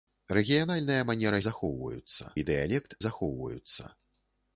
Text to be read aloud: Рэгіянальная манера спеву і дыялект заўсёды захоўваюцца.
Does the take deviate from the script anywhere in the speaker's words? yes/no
yes